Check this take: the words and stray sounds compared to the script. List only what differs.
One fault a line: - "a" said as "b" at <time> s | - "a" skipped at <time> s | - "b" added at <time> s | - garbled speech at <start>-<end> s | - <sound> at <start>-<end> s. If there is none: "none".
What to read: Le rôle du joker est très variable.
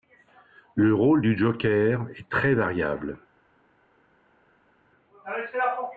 none